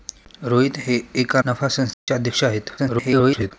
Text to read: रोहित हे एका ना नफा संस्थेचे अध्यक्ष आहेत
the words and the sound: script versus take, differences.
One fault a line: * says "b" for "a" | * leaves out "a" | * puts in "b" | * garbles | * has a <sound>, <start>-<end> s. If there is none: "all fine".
* leaves out "ना"
* has a dropout, 1.9-2.1 s
* garbles